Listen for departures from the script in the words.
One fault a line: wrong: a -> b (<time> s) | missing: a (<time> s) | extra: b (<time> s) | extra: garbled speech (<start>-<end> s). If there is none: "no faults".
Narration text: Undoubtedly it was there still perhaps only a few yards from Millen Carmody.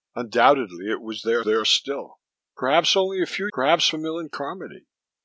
extra: there (1.4 s)
wrong: yards -> perhaps (3.5 s)